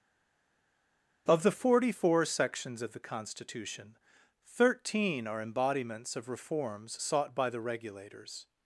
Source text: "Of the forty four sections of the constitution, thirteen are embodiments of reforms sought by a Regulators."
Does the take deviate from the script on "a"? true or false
true